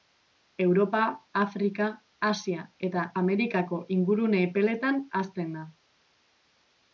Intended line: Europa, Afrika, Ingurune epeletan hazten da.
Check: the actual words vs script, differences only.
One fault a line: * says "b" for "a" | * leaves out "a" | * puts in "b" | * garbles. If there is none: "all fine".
* puts in "Asia eta Amerikako"